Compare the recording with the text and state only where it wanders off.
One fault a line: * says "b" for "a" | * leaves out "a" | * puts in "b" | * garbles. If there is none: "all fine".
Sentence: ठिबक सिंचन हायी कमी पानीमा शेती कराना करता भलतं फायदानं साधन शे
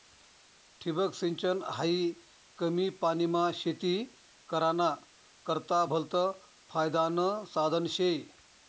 all fine